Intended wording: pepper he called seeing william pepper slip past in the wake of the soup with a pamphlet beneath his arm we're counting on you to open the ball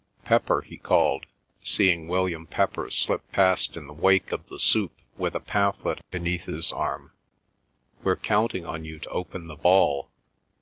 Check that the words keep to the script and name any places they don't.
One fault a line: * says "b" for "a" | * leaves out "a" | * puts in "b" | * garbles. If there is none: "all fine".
all fine